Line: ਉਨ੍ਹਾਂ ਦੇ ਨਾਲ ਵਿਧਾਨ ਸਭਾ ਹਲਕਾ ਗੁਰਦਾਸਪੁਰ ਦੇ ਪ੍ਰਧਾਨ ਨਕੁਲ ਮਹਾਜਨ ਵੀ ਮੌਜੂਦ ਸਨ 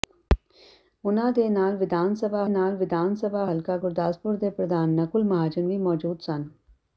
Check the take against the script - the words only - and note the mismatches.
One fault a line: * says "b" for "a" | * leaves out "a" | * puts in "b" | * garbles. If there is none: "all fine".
* puts in "ਨਾਲ ਵਿਧਾਨ ਸਭਾ"